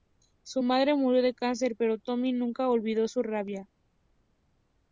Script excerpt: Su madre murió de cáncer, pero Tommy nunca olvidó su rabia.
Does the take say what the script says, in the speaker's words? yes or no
yes